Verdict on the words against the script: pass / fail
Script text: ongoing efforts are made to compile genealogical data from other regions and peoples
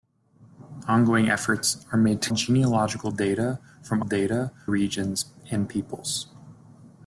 fail